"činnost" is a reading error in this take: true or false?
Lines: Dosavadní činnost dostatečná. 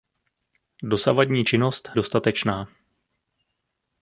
false